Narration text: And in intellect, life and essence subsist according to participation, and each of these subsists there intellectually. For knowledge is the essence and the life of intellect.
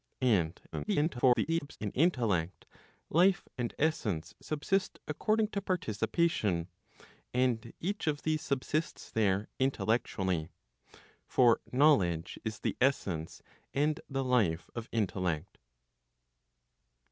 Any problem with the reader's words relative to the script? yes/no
yes